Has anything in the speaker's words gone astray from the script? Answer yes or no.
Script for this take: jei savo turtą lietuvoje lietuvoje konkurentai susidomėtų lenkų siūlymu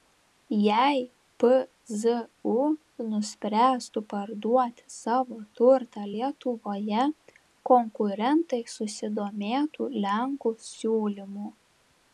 yes